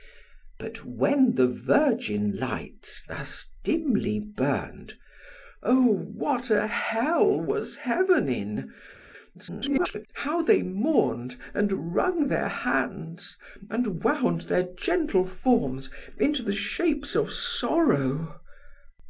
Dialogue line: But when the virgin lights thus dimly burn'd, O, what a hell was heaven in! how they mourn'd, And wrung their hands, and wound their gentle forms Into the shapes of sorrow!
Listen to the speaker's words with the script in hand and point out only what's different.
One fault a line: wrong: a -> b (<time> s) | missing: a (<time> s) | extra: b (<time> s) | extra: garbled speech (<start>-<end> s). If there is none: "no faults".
extra: garbled speech (9.3-10.1 s)